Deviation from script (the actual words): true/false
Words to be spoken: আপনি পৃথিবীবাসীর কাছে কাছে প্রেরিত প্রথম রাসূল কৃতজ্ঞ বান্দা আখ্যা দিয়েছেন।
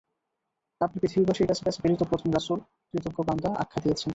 false